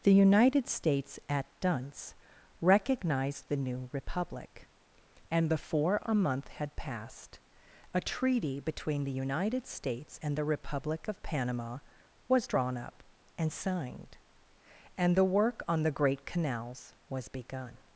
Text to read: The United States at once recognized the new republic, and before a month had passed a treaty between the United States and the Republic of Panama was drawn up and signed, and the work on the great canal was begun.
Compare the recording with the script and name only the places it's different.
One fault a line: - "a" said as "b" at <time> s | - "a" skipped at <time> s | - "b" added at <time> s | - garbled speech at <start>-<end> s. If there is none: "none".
- "once" said as "dunce" at 1.6 s
- "canal" said as "canals" at 16.3 s